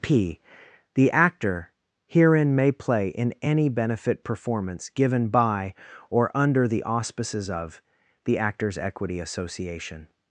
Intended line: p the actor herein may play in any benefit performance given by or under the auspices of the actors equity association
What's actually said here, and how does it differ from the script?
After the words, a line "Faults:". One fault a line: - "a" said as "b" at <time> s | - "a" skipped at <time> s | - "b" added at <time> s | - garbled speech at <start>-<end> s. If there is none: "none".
p the actor herein may play in any benefit performance given by or under the auspices of the actors equity association
Faults:
none